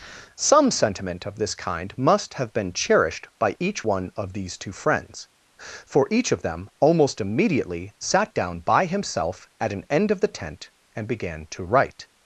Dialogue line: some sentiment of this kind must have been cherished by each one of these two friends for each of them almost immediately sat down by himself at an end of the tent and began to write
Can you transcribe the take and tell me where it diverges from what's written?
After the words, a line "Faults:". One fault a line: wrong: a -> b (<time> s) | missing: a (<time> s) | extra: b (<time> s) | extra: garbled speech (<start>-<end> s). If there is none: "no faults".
some sentiment of this kind must have been cherished by each one of these two friends for each of them almost immediately sat down by himself at an end of the tent and began to write
Faults:
no faults